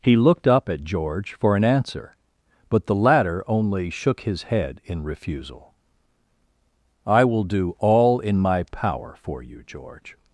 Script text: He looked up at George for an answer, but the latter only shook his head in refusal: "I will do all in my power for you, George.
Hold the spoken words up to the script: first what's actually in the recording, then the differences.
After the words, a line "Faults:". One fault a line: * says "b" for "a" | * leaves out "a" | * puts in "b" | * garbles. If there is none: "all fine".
He looked up at George for an answer, but the latter only shook his head in refusal: "I will do all in my power for you, George.
Faults:
all fine